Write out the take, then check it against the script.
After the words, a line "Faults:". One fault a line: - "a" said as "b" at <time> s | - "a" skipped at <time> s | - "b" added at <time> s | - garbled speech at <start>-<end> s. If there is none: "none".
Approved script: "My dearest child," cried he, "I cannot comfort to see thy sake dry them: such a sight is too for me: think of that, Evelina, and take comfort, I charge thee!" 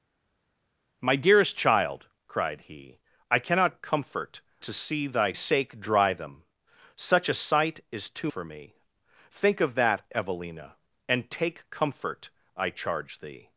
"My dearest child," cried he, "I cannot comfort to see thy sake dry them: such a sight is too for me: think of that, Evelina, and take comfort, I charge thee!"
Faults:
none